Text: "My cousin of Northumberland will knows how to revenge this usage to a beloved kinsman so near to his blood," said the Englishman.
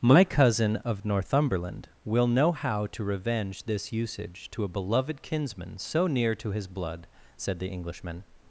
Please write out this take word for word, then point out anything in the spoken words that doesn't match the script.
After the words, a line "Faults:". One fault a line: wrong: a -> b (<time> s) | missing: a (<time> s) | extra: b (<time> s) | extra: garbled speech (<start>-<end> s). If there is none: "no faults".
"My cousin of Northumberland will know how to revenge this usage to a beloved kinsman so near to his blood," said the Englishman.
Faults:
wrong: knows -> know (2.3 s)